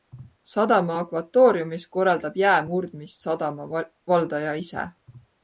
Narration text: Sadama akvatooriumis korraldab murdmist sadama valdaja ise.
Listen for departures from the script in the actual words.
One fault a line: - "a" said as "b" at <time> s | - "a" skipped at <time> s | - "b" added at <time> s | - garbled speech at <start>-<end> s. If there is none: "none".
- "jää" added at 2.4 s